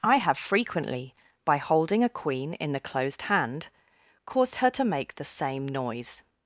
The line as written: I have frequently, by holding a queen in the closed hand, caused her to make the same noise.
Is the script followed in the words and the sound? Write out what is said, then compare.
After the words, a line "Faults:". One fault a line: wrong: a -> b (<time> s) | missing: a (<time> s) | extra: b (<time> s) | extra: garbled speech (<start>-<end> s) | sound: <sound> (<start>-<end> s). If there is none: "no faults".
I have frequently, by holding a queen in the closed hand, caused her to make the same noise.
Faults:
no faults